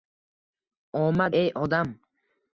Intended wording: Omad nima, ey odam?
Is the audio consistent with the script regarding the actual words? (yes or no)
no